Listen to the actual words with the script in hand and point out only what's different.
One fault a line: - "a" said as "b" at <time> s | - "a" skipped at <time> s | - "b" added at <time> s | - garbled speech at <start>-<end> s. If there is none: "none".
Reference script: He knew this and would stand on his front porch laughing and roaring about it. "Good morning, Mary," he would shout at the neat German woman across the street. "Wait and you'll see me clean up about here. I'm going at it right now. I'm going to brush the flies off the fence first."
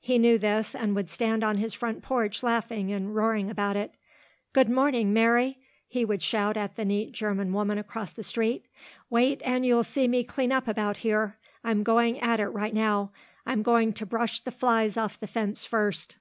none